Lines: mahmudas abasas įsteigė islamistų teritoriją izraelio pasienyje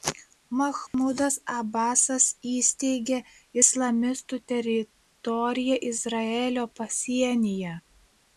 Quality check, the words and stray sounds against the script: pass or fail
fail